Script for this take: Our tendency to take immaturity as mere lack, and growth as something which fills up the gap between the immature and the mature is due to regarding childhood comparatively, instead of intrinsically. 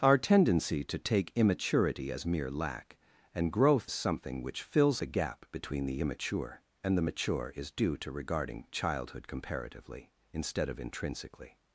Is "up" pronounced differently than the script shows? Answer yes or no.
yes